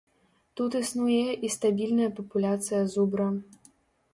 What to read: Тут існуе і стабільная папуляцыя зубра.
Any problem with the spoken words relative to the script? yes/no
no